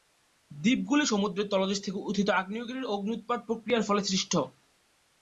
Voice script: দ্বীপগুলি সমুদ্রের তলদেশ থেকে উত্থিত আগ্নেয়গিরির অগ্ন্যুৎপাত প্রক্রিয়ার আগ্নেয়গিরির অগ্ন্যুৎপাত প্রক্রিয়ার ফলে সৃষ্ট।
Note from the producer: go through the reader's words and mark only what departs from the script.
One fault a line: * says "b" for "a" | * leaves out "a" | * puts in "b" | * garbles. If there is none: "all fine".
* leaves out "আগ্নেয়গিরির অগ্ন্যুৎপাত প্রক্রিয়ার"